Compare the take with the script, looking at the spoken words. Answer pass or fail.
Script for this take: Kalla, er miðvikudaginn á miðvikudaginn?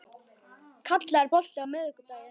fail